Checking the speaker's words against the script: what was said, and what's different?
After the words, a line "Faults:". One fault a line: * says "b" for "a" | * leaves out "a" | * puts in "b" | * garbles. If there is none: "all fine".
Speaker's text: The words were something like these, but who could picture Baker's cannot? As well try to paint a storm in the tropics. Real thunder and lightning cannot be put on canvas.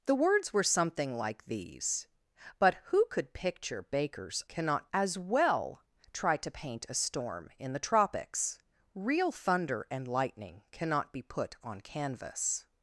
The words were something like these, but who could picture Baker's cannot? As well try to paint a storm in the tropics. Real thunder and lightning cannot be put on canvas.
Faults:
all fine